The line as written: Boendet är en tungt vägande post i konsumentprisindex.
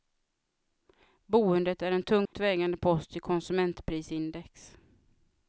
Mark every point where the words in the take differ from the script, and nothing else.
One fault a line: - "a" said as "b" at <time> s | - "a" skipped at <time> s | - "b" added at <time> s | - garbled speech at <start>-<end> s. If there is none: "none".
none